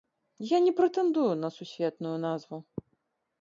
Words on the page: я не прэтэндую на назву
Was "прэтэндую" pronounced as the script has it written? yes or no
yes